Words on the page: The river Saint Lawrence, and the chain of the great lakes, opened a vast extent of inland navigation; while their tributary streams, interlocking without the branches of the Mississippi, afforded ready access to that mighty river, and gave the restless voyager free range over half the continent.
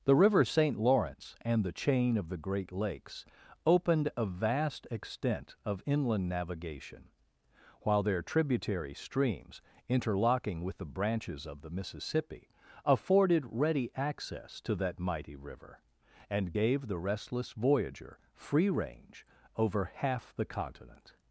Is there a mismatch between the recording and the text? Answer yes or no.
yes